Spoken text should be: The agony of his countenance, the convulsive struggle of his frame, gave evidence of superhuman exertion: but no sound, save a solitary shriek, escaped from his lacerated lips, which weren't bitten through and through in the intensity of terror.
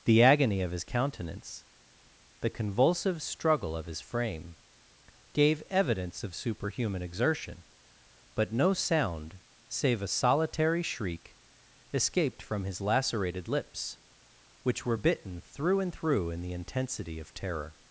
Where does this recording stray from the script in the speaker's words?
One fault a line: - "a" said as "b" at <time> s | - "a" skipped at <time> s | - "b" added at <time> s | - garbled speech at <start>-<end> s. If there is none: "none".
- "weren't" said as "were" at 14.8 s